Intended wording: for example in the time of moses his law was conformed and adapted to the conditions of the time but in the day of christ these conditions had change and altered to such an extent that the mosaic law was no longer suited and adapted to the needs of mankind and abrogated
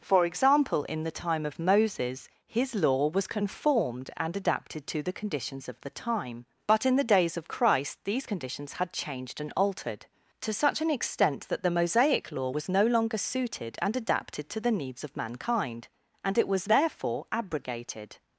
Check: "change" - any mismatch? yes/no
yes